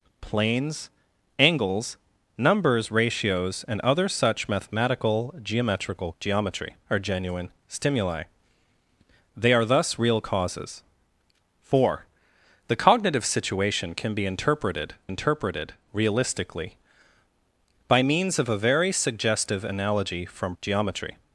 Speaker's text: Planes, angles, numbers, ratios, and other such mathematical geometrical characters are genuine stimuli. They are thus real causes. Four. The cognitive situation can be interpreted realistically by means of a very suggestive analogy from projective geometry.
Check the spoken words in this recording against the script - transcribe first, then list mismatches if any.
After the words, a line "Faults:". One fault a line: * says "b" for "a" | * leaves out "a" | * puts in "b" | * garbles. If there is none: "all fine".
Planes, angles, numbers, ratios, and other such mathematical geometrical geometry are genuine stimuli. They are thus real causes. Four. The cognitive situation can be interpreted interpreted realistically by means of a very suggestive analogy from geometry.
Faults:
* says "geometry" for "characters"
* puts in "interpreted"
* leaves out "projective"